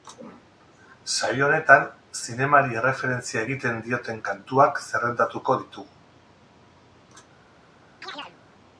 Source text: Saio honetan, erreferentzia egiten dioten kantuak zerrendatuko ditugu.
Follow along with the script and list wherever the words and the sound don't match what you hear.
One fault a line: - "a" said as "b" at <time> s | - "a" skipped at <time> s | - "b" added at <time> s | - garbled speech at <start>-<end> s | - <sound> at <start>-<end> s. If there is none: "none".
- "zinemari" added at 2.2 s
- chirp at 8.0-8.4 s